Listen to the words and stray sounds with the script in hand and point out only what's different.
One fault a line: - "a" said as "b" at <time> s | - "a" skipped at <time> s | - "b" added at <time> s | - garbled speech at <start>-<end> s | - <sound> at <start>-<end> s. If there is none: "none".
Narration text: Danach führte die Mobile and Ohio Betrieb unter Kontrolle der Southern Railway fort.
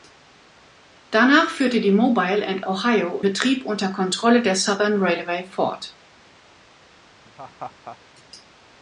- laugh at 7.2-8.0 s